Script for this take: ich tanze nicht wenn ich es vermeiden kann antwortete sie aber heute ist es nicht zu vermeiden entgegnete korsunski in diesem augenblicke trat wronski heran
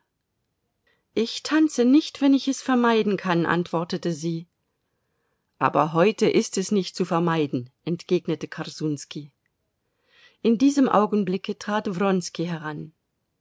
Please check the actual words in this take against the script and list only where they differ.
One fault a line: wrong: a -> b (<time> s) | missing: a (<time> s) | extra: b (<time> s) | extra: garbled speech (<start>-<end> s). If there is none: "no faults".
no faults